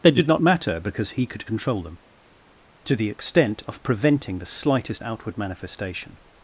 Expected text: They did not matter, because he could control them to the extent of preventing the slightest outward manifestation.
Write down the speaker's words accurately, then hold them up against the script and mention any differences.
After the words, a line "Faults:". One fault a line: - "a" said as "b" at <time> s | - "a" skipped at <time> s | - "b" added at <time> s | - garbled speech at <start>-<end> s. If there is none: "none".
They did not matter, because he could control them to the extent of preventing the slightest outward manifestation.
Faults:
none